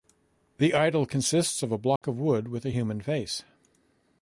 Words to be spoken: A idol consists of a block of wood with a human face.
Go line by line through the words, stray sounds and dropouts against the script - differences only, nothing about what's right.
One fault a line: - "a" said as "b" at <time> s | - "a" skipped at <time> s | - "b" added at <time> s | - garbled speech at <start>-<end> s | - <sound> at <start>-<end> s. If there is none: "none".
- "A" said as "The" at 0.6 s
- dropout at 2.0-2.0 s